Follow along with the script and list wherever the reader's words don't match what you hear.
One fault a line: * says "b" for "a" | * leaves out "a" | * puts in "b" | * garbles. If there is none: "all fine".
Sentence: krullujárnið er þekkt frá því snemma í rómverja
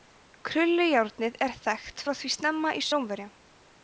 all fine